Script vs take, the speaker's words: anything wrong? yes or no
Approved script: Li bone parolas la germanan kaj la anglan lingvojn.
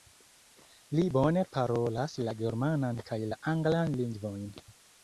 no